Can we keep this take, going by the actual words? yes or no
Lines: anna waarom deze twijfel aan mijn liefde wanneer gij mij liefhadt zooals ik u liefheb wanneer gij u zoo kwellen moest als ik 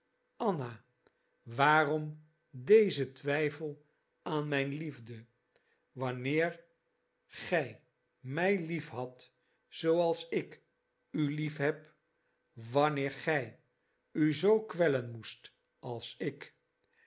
yes